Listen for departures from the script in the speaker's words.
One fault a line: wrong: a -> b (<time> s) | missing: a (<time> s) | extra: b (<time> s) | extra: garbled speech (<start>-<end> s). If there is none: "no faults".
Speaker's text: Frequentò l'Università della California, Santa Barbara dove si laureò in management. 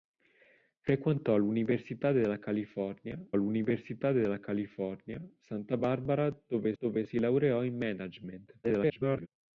extra: l'Università della California (3.4 s)
extra: dove (6.8 s)
extra: garbled speech (8.6-9.3 s)